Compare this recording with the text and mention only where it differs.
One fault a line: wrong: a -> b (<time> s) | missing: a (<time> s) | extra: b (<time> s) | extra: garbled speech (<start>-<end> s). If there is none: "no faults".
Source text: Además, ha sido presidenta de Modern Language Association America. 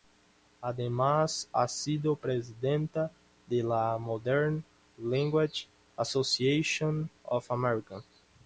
extra: la (3.6 s)
extra: of (7.2 s)